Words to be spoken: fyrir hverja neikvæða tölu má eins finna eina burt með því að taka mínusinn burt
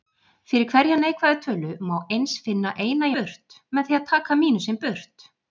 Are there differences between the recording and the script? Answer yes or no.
no